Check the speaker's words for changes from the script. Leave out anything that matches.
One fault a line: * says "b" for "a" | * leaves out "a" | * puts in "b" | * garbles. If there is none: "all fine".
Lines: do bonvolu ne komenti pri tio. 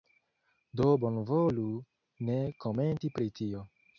all fine